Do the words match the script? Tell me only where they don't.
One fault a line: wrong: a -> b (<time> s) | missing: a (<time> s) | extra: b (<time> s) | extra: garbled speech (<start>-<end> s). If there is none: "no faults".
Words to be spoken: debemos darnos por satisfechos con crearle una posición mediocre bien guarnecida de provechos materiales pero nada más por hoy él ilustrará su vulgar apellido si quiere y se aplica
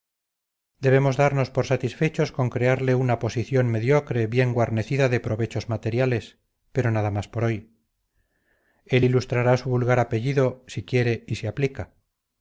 no faults